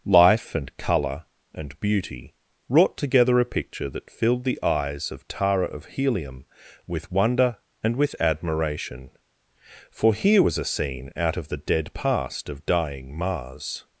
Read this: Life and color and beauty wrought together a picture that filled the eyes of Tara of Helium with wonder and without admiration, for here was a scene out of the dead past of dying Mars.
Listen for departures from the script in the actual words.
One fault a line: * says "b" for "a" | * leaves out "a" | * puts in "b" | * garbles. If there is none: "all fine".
* says "with" for "without"